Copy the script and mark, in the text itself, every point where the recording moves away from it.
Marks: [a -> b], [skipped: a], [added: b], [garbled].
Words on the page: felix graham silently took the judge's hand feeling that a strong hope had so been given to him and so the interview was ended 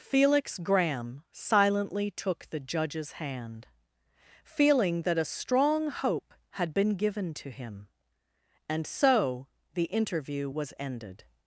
felix graham silently took the judge's hand feeling that a strong hope had [skipped: so] been given to him and so the interview was ended